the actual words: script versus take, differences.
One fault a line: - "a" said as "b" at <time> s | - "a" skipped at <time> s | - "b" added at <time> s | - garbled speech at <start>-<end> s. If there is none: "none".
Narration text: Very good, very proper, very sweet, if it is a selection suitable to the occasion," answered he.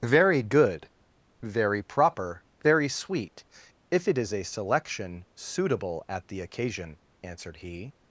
- "to" said as "at" at 6.1 s